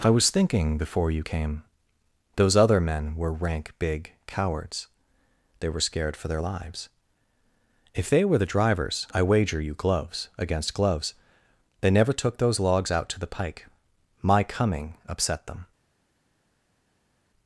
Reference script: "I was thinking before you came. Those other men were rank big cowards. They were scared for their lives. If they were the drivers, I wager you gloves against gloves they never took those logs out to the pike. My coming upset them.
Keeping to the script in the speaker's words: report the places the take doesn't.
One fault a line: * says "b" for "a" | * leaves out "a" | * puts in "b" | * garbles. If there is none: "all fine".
all fine